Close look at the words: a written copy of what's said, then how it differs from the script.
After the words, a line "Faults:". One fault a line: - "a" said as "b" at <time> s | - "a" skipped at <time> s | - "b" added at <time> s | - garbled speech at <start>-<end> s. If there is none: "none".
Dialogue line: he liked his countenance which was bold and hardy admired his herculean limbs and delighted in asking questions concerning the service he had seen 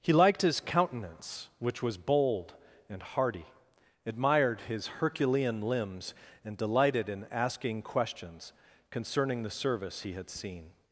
he liked his countenance which was bold and hardy admired his herculean limbs and delighted in asking questions concerning the service he had seen
Faults:
none